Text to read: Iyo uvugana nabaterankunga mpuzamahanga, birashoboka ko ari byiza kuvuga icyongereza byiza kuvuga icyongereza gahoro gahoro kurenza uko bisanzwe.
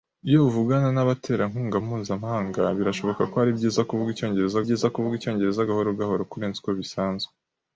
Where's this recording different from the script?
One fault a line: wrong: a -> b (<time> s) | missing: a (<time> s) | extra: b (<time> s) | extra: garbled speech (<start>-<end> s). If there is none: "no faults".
no faults